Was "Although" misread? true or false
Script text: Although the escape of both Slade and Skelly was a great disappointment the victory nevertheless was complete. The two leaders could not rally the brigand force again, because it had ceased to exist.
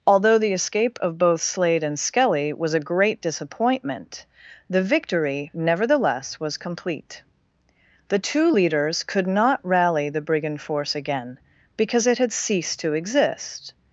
false